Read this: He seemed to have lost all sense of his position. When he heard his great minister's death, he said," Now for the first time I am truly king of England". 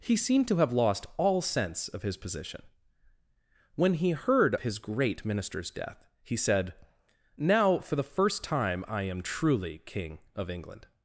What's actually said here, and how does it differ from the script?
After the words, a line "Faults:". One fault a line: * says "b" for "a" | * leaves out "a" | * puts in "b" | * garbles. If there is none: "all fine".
He seemed to have lost all sense of his position. When he heard his great minister's death, he said," Now for the first time I am truly king of England".
Faults:
all fine